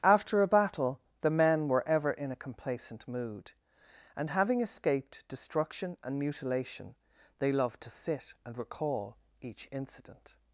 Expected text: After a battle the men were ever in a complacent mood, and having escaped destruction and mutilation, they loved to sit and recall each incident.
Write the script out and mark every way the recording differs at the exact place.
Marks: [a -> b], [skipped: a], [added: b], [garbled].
After a battle the men were ever in a complacent mood, and having escaped destruction and mutilation, they loved to sit and recall each incident.